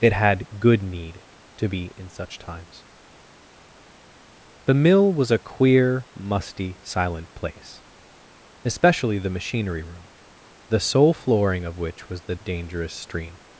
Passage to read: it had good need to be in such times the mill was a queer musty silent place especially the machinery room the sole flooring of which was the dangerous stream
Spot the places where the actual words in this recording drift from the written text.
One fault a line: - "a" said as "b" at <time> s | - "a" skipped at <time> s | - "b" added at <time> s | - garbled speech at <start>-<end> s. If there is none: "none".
none